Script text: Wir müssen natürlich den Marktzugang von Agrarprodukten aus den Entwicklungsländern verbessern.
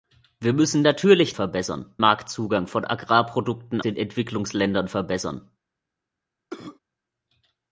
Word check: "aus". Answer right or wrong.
wrong